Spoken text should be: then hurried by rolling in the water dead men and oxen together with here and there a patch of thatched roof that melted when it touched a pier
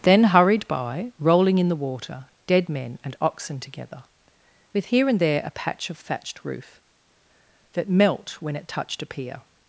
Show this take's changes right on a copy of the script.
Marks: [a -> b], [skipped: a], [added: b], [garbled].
then hurried by rolling in the water dead men and oxen together with here and there a patch of thatched roof that [melted -> melt] when it touched a pier